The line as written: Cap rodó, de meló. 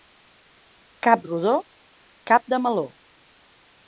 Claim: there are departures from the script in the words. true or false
true